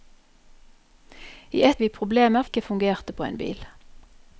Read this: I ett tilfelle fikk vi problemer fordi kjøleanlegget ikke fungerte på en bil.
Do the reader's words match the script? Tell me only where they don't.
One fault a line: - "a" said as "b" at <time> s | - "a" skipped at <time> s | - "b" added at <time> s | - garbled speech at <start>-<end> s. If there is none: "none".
- "tilfelle fikk" skipped at 1.8 s
- "fordi kjøleanlegget" skipped at 2.4 s